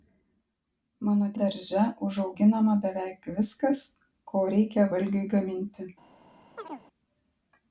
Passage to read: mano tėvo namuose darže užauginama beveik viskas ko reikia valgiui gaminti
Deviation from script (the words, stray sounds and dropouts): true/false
true